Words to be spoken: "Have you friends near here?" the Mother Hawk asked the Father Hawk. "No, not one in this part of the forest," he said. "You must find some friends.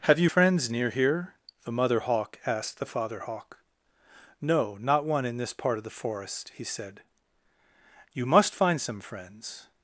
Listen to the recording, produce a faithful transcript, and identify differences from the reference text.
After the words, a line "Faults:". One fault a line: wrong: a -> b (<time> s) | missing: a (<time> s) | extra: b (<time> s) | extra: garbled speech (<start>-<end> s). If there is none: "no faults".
"Have you friends near here?" the Mother Hawk asked the Father Hawk. "No, not one in this part of the forest," he said. "You must find some friends.
Faults:
no faults